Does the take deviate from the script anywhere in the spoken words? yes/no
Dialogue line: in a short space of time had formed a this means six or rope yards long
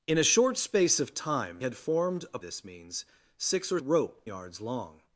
no